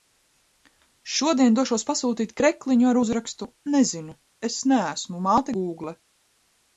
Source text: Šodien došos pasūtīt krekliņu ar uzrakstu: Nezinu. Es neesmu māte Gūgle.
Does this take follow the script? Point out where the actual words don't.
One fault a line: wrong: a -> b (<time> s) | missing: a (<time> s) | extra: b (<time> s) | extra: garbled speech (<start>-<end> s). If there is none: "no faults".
no faults